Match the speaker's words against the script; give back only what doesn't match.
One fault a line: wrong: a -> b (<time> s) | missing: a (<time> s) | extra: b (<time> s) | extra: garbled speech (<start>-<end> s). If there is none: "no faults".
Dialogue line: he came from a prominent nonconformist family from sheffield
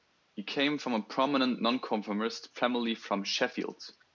no faults